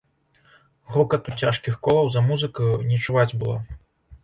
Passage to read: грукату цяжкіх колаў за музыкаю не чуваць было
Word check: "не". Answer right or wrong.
right